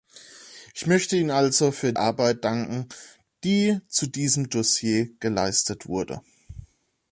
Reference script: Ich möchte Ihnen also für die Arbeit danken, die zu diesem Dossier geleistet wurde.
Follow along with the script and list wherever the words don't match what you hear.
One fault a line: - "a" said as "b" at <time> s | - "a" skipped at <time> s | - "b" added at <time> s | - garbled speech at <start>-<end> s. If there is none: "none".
- "die" skipped at 1.9 s